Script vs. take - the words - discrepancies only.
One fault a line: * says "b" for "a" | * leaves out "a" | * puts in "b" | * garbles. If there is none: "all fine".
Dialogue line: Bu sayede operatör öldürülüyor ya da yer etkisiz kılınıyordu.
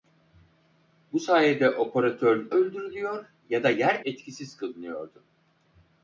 all fine